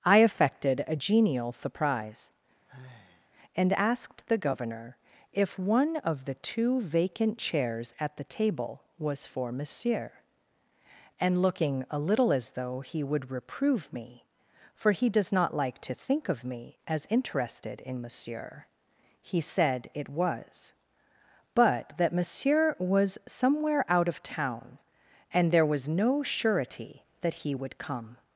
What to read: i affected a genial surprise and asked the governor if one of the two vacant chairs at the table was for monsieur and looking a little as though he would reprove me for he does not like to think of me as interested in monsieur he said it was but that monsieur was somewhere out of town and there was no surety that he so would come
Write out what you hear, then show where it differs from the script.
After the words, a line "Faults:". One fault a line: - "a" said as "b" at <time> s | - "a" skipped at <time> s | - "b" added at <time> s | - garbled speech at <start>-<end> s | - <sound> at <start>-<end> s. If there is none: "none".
i affected a genial surprise and asked the governor if one of the two vacant chairs at the table was for monsieur and looking a little as though he would reprove me for he does not like to think of me as interested in monsieur he said it was but that monsieur was somewhere out of town and there was no surety that he would come
Faults:
- sigh at 2.7-3.3 s
- "so" skipped at 27.5 s